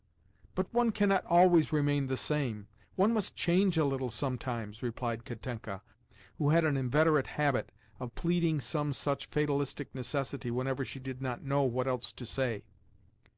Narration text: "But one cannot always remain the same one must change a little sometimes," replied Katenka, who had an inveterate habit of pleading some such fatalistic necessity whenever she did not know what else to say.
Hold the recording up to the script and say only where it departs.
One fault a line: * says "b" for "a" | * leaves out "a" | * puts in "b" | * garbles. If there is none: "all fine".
all fine